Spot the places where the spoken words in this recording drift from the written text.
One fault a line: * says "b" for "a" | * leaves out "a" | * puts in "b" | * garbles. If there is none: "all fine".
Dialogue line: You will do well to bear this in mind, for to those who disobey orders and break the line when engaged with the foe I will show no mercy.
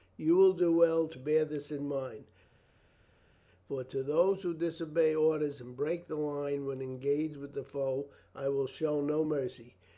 all fine